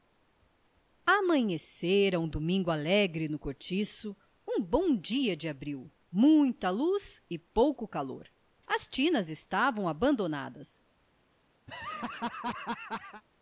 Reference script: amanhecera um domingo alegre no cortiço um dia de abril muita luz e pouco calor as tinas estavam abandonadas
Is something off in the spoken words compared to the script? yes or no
yes